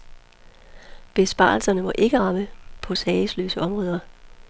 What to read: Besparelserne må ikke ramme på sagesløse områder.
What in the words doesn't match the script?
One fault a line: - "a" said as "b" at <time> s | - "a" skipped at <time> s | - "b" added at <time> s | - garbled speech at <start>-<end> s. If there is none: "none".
none